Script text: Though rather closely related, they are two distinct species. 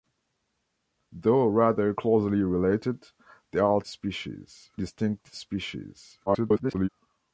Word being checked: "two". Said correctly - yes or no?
no